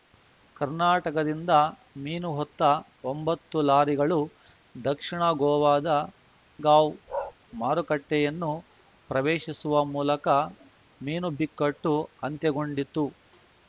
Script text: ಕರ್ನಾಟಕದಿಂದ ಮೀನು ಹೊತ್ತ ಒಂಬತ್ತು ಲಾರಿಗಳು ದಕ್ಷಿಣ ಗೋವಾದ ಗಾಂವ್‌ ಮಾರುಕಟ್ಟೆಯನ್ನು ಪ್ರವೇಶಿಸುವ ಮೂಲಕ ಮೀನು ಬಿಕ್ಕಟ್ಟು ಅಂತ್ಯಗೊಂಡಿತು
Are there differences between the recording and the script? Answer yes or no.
no